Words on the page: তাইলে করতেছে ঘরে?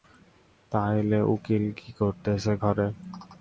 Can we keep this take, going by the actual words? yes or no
no